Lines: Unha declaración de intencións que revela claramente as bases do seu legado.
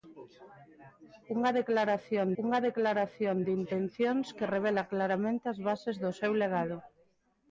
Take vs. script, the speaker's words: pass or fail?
fail